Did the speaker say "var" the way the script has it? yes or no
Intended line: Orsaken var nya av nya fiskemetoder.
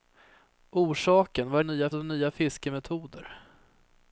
yes